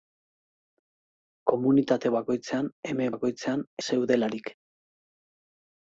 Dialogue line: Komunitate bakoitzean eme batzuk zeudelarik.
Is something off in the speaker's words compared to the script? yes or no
yes